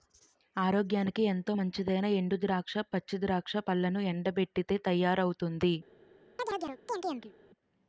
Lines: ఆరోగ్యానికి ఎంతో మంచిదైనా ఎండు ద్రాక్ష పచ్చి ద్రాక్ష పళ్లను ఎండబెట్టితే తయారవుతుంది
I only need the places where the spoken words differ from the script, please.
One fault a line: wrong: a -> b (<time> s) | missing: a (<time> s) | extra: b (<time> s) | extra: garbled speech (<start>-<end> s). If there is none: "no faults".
no faults